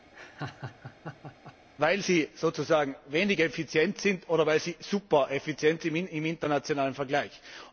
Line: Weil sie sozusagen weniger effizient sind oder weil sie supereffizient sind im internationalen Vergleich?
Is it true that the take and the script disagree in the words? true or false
false